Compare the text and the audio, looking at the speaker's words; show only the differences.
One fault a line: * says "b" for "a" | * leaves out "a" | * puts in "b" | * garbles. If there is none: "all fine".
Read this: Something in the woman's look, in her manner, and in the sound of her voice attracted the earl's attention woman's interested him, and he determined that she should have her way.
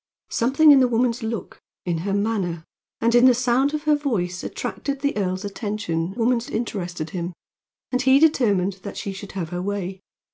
all fine